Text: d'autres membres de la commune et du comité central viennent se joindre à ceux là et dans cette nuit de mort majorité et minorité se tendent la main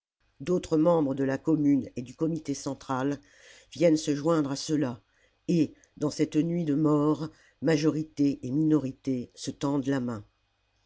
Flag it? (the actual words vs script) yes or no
no